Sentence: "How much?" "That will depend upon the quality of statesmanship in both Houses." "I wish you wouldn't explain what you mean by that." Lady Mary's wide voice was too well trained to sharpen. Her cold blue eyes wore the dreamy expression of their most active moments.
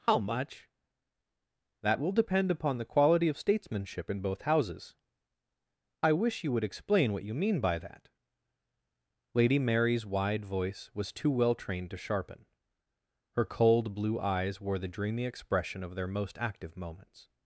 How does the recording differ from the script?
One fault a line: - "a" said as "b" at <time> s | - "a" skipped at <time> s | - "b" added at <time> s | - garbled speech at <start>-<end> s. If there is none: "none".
- "wouldn't" said as "would" at 6.5 s